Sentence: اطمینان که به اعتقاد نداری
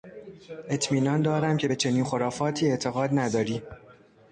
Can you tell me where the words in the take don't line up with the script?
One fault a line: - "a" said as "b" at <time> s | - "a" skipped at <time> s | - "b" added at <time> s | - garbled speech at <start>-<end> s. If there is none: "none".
- "دارم" added at 1.2 s
- "چنین خرافاتی" added at 1.7 s